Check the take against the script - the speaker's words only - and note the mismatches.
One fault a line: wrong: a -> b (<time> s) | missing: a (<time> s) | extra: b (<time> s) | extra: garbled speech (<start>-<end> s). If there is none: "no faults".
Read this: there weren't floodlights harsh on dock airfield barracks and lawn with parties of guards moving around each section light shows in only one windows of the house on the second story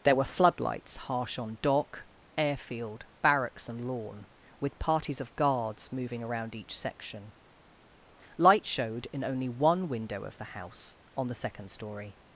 wrong: weren't -> were (0.1 s)
wrong: shows -> showed (8.7 s)
wrong: windows -> window (9.9 s)